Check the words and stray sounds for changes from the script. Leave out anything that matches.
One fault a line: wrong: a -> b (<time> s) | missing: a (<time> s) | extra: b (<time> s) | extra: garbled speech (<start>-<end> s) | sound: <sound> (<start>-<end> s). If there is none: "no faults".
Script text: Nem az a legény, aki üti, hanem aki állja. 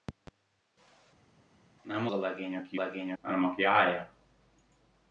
missing: az (2.1 s)
wrong: üti -> legény (2.7 s)